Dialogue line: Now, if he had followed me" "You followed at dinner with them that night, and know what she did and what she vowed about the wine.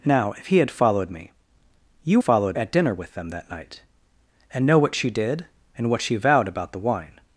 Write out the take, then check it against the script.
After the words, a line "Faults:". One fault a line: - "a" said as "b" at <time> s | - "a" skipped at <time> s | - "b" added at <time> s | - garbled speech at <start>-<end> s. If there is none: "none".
Now, if he had followed me" "You followed at dinner with them that night, and know what she did and what she vowed about the wine.
Faults:
none